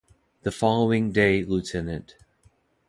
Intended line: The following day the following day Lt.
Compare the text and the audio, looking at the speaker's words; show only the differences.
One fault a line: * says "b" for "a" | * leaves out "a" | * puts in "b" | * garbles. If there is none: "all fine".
* leaves out "the following day"